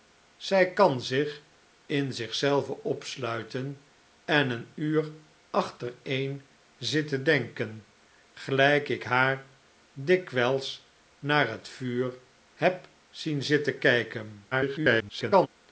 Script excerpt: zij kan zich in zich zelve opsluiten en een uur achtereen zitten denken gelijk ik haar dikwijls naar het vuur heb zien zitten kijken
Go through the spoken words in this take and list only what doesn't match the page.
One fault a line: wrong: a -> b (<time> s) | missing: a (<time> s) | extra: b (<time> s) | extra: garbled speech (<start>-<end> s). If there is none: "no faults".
extra: garbled speech (14.5-15.5 s)